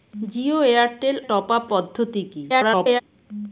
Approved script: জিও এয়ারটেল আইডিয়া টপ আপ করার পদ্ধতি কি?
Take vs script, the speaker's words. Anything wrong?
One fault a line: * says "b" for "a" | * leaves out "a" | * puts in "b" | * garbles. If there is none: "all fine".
* leaves out "আইডিয়া"
* leaves out "করার"
* garbles